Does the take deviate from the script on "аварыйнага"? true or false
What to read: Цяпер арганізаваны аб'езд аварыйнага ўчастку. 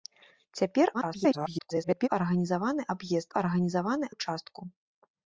true